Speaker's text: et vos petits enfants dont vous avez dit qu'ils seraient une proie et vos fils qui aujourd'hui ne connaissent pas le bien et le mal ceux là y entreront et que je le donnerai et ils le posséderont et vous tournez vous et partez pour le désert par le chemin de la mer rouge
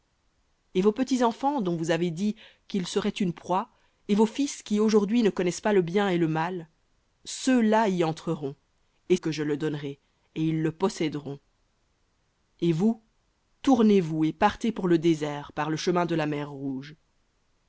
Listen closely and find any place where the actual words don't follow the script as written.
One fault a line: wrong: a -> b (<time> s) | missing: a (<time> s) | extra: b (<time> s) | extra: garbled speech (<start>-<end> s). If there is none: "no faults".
no faults